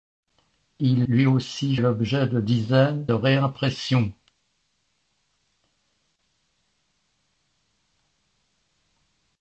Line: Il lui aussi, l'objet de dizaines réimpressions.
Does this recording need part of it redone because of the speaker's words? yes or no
no